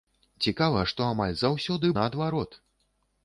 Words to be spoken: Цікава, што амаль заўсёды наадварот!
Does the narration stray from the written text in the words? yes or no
no